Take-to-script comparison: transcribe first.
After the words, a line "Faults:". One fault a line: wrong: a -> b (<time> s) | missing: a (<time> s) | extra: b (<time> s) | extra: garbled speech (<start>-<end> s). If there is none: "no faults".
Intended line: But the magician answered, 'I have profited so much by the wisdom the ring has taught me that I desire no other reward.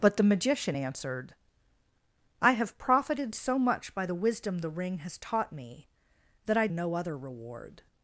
But the magician answered, 'I have profited so much by the wisdom the ring has taught me that I no other reward.
Faults:
missing: desire (6.7 s)